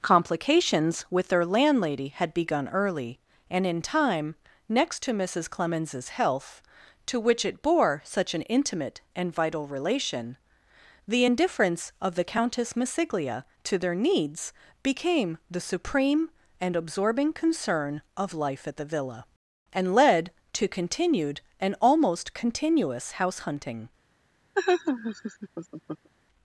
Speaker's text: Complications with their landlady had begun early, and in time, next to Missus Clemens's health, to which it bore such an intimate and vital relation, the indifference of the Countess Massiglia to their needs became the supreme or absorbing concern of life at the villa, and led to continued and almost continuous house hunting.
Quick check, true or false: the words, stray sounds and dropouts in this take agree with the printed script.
false